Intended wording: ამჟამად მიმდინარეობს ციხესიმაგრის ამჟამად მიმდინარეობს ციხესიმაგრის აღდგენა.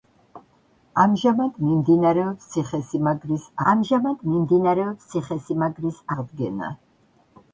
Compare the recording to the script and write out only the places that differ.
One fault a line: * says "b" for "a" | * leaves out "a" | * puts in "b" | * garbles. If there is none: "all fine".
all fine